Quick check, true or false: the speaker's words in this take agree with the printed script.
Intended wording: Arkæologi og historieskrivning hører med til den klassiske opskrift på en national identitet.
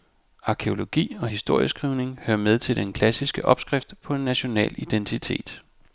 true